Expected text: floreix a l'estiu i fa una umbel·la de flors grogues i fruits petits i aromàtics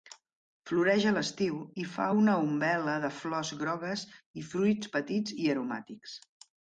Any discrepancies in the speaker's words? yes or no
no